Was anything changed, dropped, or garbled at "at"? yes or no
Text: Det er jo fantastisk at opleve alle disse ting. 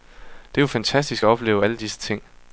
no